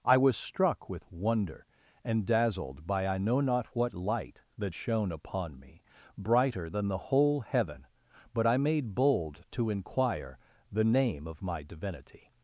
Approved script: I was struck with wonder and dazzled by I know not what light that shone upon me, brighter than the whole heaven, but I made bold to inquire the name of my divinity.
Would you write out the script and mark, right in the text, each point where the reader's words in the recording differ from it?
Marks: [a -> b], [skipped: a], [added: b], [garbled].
I was struck with wonder and dazzled by I know not what light that shone upon me, brighter than the whole heaven, but I made bold to inquire the name of my divinity.